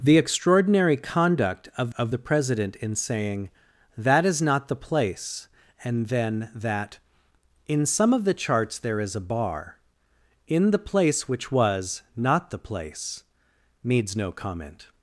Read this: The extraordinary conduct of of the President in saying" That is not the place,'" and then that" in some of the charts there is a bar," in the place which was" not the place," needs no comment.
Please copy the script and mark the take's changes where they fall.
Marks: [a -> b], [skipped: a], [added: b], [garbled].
The extraordinary conduct of of the President in saying" That is not the place,'" and then that" in some of the charts there is a bar," in the place which was" not the place," needs no comment.